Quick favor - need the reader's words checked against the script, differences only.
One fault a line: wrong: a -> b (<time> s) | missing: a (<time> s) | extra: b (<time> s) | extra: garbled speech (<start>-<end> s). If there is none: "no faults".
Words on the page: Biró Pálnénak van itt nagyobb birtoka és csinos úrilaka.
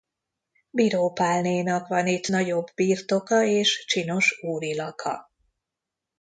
no faults